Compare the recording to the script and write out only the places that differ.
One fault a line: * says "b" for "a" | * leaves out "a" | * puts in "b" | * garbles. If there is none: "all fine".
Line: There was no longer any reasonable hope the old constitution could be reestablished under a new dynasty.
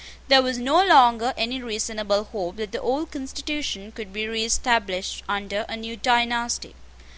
* puts in "that"